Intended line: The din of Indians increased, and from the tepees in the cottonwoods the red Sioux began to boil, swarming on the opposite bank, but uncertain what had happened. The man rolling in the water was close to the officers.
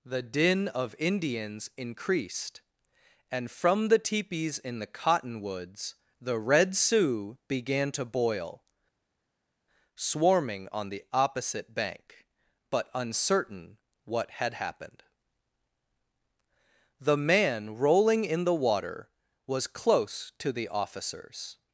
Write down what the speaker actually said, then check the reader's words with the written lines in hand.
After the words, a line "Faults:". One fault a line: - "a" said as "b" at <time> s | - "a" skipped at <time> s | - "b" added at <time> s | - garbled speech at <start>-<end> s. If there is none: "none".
The din of Indians increased, and from the tepees in the cottonwoods the red Sioux began to boil, swarming on the opposite bank, but uncertain what had happened. The man rolling in the water was close to the officers.
Faults:
none